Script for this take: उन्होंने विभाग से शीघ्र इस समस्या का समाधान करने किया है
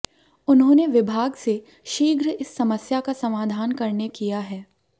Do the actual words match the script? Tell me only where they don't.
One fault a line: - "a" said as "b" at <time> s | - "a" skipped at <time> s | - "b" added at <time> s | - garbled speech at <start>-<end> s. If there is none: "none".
none